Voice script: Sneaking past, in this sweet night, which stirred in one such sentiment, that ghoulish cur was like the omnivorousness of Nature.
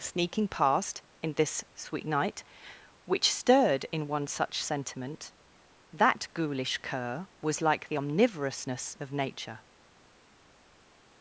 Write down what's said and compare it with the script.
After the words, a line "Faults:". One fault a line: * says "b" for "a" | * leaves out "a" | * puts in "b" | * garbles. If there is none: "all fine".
Sneaking past, in this sweet night, which stirred in one such sentiment, that ghoulish cur was like the omnivorousness of Nature.
Faults:
all fine